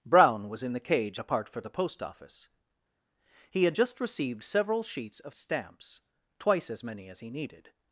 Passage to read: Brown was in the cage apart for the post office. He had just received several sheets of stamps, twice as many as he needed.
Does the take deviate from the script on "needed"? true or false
false